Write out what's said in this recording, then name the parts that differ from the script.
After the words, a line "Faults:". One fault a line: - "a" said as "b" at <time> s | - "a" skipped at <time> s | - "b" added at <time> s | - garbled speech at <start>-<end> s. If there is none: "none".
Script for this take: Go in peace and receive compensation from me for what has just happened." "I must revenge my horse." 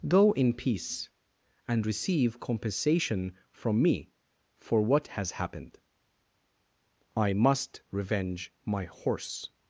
Go in peace and receive compensation from me for what has happened." "I must revenge my horse."
Faults:
- "just" skipped at 5.3 s